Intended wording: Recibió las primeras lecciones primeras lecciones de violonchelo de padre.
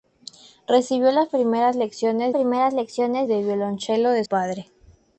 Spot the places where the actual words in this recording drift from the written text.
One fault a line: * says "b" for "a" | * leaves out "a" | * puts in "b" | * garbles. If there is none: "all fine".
all fine